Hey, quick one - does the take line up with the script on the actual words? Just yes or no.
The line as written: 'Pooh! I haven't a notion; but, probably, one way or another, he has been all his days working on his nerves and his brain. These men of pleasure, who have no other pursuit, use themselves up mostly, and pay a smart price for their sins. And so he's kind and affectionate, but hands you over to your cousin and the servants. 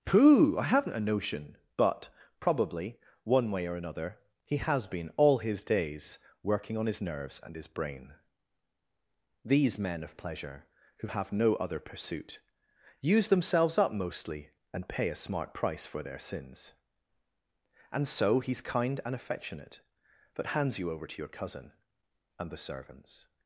yes